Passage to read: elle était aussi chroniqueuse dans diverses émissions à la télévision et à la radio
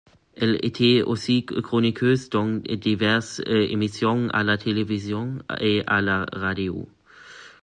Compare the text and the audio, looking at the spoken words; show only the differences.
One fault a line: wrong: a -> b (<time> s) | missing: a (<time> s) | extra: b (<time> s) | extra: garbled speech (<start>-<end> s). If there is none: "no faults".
no faults